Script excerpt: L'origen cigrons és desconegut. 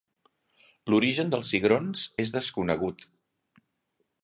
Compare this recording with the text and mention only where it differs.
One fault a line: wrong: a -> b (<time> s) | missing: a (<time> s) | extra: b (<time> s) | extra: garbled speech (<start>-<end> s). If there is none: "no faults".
extra: dels (1.3 s)